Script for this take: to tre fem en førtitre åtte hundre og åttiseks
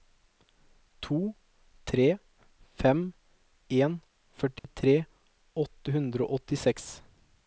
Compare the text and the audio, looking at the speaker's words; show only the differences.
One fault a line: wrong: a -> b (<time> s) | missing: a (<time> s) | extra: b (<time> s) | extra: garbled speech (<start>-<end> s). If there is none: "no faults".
no faults